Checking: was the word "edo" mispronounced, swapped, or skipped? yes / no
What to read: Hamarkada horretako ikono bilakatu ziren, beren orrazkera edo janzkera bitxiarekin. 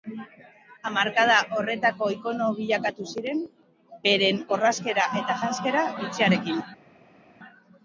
yes